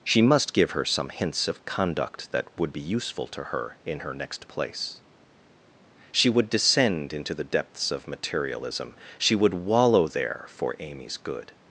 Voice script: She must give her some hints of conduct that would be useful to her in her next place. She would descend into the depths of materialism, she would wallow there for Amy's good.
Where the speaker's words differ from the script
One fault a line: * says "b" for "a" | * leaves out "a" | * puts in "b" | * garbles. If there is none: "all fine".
all fine